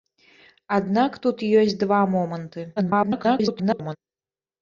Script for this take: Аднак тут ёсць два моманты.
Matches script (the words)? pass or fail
fail